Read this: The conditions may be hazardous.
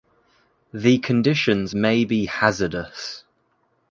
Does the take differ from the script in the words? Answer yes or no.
no